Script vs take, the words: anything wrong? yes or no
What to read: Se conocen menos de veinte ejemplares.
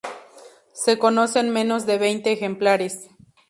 no